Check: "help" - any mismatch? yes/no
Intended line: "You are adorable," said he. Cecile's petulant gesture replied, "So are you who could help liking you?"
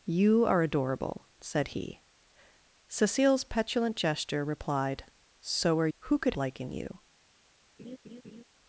yes